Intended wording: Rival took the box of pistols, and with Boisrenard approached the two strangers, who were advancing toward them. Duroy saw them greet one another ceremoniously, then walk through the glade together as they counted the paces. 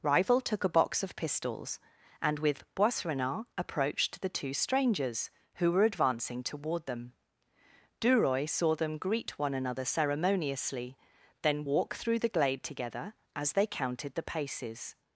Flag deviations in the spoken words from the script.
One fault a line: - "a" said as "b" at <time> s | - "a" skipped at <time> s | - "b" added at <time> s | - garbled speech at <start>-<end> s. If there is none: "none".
- "the" said as "a" at 0.6 s